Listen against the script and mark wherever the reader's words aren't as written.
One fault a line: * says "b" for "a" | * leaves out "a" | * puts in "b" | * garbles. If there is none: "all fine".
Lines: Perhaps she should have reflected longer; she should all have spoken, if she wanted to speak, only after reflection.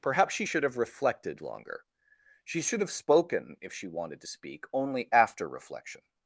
* leaves out "all"